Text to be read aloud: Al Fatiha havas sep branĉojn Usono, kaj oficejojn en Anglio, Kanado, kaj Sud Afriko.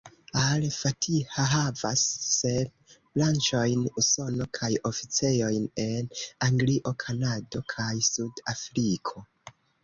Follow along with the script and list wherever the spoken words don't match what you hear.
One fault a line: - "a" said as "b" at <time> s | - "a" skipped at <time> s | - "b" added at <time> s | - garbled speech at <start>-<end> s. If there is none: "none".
none